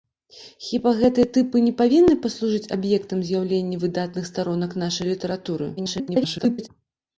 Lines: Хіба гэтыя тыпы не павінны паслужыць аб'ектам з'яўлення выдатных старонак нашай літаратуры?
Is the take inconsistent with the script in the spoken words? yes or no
yes